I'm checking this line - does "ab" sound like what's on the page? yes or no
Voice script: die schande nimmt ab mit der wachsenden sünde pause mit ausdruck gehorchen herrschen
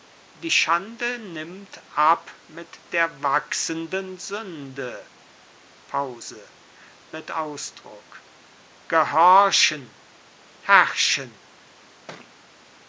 yes